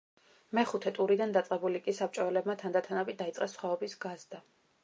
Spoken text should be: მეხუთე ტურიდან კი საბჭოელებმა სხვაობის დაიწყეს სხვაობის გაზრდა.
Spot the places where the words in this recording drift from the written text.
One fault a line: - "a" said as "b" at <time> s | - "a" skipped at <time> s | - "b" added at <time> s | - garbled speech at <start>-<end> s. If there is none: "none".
- "დაწყებული" added at 1.4 s
- "სხვაობის" said as "თანდათანობით" at 2.6 s